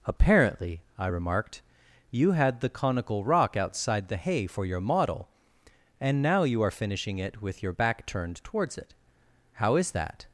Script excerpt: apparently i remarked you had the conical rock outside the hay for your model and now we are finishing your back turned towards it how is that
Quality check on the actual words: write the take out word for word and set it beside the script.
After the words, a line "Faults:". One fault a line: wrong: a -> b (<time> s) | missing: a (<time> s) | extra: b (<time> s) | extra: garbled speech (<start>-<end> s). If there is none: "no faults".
apparently i remarked you had the conical rock outside the hay for your model and now you are finishing it with your back turned towards it how is that
Faults:
wrong: we -> you (6.4 s)
extra: it with (7.2 s)